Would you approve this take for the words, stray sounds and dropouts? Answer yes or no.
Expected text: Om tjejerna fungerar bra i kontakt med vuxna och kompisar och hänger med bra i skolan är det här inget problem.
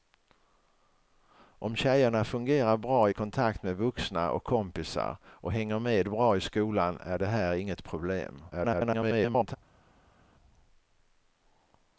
no